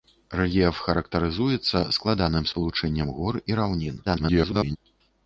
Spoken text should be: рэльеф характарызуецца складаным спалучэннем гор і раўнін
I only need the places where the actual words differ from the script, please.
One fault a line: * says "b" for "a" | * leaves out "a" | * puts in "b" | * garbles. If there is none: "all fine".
* garbles